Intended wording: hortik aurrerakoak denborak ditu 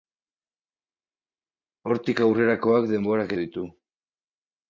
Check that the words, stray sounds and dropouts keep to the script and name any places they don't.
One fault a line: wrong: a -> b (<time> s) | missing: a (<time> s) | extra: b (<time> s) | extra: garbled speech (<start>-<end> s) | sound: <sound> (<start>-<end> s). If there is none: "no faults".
no faults